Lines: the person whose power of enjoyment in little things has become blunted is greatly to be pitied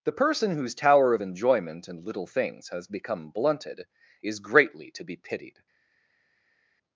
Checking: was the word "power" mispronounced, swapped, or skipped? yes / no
yes